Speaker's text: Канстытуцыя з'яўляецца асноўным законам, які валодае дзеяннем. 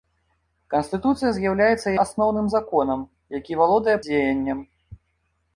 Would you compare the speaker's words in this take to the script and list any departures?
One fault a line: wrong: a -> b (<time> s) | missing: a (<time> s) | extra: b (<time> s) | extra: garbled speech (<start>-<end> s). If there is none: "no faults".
no faults